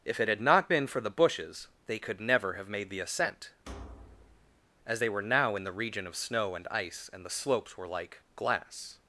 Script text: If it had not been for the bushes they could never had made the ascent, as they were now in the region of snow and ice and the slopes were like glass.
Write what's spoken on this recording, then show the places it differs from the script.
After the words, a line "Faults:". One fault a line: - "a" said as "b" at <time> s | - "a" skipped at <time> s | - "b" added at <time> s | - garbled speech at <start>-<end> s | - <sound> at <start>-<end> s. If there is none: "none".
If it had not been for the bushes they could never have made the ascent, as they were now in the region of snow and ice and the slopes were like glass.
Faults:
- "had" said as "have" at 2.5 s
- thud at 3.7-4.6 s